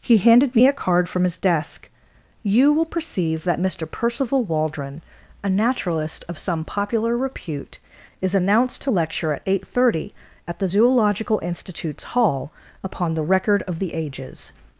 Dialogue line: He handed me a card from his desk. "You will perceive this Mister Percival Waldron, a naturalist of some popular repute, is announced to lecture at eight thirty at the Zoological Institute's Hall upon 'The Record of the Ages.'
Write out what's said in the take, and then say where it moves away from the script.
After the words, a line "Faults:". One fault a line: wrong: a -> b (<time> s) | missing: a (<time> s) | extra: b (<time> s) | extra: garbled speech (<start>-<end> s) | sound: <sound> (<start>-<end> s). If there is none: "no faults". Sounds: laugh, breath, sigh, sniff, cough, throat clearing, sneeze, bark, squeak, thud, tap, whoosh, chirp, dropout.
He handed me a card from his desk. "You will perceive that Mister Percival Waldron, a naturalist of some popular repute, is announced to lecture at eight thirty at the Zoological Institute's Hall upon 'The Record of the Ages.'
Faults:
wrong: this -> that (3.4 s)